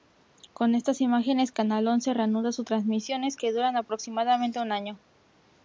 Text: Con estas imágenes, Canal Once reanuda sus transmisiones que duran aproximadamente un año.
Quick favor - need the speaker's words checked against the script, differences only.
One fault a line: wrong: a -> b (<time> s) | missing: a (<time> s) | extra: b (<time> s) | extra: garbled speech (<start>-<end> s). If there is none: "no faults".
no faults